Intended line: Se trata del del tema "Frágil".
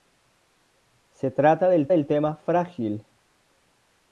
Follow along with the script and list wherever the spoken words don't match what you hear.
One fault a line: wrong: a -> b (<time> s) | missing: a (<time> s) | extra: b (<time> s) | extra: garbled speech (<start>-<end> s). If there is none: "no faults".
no faults